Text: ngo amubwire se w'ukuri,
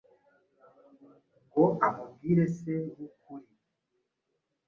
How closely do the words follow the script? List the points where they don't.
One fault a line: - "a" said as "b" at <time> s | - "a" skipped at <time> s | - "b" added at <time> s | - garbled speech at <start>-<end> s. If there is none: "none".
none